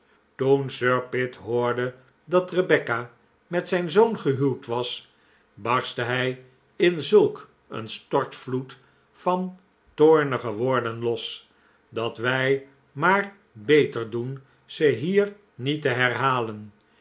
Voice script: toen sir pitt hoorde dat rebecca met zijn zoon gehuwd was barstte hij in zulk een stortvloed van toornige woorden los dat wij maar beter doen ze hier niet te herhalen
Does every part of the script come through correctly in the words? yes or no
yes